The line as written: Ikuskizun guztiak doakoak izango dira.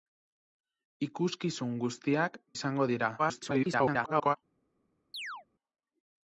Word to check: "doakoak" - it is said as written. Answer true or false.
false